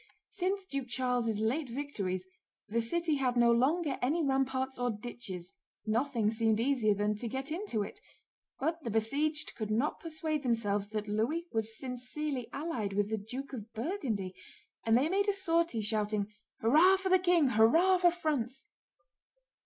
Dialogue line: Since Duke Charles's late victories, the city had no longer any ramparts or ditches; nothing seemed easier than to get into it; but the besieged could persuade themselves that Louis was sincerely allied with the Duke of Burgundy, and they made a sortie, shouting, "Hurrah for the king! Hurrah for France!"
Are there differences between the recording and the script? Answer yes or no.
yes